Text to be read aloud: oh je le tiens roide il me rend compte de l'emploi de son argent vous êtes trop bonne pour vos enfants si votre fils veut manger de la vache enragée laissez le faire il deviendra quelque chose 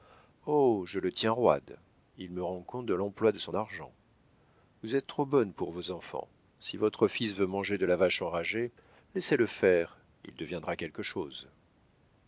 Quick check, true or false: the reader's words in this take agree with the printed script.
true